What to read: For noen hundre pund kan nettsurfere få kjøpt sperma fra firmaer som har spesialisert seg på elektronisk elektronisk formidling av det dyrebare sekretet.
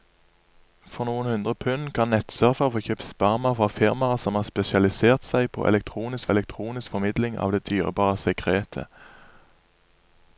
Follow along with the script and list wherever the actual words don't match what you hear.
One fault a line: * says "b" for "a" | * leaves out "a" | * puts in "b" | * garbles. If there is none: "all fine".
all fine